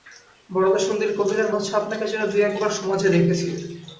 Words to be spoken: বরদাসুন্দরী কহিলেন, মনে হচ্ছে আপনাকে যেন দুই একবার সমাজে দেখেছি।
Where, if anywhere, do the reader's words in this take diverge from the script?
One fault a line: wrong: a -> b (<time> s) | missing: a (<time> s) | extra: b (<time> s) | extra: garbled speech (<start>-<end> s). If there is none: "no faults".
missing: মনে (1.5 s)